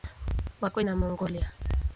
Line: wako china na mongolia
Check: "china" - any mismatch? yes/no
yes